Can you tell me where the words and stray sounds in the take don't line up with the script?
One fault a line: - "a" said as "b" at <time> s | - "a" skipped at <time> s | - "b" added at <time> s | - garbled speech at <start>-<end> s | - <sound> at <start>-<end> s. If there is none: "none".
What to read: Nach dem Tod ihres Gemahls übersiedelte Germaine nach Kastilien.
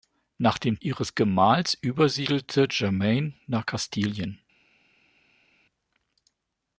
- "Tod" skipped at 0.8 s